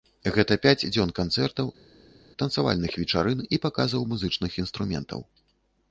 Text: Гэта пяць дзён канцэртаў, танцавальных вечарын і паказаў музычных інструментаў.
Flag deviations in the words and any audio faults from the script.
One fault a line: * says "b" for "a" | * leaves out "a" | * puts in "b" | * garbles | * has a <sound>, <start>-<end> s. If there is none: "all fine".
all fine